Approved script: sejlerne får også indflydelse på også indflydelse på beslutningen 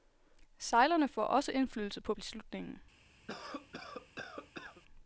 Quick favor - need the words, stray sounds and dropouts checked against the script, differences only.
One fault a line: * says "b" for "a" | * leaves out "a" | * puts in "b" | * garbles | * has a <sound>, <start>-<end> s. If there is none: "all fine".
* leaves out "også indflydelse på"
* has a cough, 3.3-4.8 s